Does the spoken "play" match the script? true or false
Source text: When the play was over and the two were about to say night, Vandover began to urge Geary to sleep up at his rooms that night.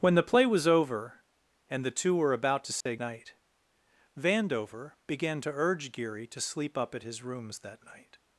true